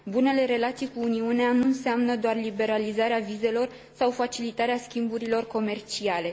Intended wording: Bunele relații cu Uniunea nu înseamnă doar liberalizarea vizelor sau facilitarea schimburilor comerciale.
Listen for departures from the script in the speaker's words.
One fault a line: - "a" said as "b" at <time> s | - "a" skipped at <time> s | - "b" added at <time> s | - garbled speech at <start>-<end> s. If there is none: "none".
none